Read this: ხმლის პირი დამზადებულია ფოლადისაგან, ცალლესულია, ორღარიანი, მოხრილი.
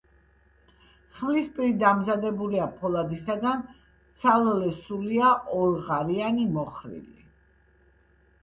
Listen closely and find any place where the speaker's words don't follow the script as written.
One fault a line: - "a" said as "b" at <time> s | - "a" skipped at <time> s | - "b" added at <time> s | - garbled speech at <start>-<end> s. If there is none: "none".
none